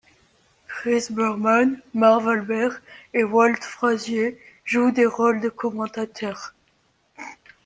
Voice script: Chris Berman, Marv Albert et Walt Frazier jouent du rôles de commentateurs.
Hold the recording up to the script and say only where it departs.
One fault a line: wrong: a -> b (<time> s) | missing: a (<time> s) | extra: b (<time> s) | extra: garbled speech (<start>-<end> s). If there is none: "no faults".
wrong: du -> des (4.9 s)